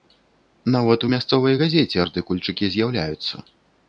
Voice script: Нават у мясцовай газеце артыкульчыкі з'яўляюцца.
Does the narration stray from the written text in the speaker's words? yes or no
no